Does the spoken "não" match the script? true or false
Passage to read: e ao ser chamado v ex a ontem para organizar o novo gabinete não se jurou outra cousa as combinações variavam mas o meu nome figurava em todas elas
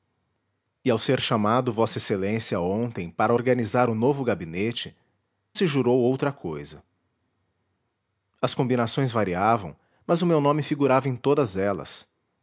false